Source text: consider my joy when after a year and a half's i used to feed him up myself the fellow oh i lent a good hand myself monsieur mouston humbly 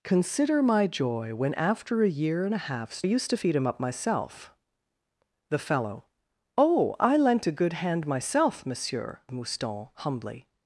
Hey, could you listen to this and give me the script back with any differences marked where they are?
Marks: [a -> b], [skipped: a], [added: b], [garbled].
consider my joy when after a year and a half's i used to feed him up myself the fellow oh i lent a good hand myself monsieur mouston humbly